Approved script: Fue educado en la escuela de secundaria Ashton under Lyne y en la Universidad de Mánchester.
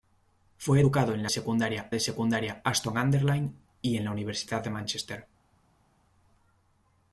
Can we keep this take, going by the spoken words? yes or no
no